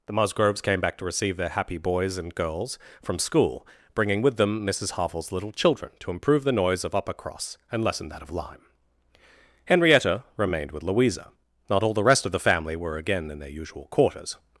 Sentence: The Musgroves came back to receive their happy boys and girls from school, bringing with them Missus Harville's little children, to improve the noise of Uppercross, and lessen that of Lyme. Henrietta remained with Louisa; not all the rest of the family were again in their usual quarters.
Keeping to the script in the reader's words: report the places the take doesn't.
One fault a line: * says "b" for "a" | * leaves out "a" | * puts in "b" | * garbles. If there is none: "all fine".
all fine